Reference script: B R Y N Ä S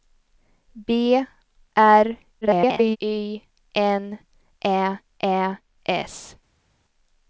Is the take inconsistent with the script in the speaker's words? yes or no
yes